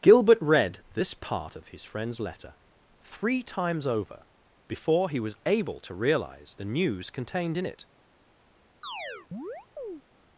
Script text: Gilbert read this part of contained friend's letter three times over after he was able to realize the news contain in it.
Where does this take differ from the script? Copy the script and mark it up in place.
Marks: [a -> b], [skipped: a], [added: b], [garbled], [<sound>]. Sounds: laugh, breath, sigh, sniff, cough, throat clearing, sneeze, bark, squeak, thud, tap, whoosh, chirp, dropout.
Gilbert read this part of [contained -> his] friend's letter three times over [after -> before] he was able to realize the news [contain -> contained] in it. [chirp]